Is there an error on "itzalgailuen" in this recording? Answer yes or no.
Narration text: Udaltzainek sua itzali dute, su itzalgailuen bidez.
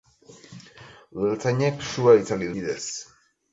yes